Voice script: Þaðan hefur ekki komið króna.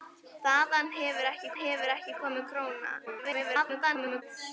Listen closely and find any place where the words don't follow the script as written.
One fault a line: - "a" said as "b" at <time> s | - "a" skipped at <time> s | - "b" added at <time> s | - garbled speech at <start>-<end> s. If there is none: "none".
- "hefur ekki" added at 1.6 s
- garbled speech at 3.1-4.2 s